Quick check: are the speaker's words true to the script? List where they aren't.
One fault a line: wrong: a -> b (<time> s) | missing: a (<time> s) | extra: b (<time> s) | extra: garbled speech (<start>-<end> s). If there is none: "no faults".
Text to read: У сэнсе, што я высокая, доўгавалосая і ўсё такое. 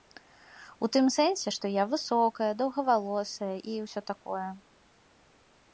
extra: тым (0.9 s)